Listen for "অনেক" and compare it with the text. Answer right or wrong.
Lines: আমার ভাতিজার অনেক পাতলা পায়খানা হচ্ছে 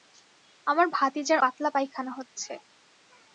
wrong